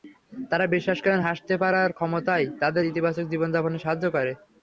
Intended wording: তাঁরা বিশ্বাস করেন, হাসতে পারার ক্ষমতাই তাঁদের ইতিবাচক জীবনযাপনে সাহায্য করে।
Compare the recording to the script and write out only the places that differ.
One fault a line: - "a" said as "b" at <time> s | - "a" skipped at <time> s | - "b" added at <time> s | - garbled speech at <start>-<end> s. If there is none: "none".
none